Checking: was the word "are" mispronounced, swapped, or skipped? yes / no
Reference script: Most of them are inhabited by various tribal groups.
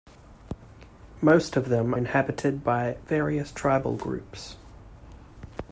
yes